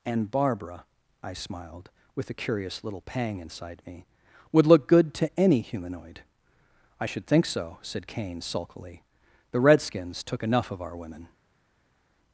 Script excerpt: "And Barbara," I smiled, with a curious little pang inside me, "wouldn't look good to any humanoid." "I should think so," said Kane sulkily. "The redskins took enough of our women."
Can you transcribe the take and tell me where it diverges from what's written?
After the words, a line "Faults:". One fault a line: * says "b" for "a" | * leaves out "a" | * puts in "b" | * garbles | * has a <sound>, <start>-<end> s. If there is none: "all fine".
"And Barbara," I smiled, with a curious little pang inside me, "would look good to any humanoid." "I should think so," said Kane sulkily. "The redskins took enough of our women."
Faults:
* says "would" for "wouldn't"